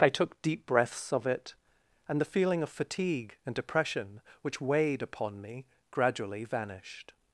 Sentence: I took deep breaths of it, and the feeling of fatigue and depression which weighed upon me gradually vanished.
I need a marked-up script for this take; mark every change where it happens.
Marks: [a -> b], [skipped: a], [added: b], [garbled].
I took deep breaths of it, and the feeling of fatigue and depression which weighed upon me gradually vanished.